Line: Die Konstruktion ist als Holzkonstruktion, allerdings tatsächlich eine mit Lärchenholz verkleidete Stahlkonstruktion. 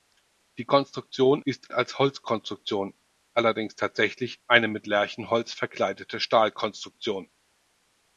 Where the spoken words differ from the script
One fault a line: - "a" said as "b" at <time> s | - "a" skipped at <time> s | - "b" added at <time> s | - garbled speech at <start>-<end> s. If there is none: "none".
none